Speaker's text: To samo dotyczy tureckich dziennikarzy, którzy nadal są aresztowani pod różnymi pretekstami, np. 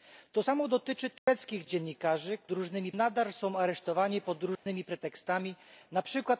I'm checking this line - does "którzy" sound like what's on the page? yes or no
no